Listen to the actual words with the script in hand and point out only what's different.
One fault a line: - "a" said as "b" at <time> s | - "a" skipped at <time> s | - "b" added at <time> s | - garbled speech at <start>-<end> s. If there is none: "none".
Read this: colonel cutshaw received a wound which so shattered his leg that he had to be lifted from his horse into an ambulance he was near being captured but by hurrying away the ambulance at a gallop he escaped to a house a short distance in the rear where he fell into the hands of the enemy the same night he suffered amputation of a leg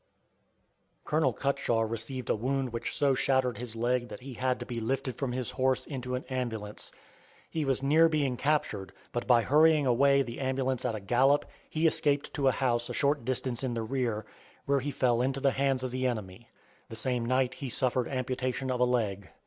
none